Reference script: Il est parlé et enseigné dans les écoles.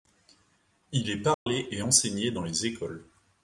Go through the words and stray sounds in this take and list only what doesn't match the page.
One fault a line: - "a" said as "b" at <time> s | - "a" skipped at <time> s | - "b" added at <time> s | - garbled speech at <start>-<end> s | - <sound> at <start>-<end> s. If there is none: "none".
- dropout at 1.3-1.5 s